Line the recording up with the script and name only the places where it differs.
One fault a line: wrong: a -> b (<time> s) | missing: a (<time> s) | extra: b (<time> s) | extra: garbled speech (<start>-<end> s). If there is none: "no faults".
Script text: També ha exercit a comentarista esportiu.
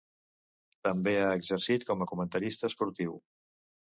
extra: com (1.9 s)